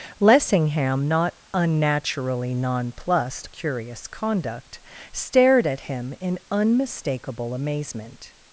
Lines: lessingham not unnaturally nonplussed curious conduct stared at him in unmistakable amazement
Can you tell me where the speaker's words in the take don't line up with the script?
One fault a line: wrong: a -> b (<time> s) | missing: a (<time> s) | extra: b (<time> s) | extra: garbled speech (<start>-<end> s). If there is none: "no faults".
no faults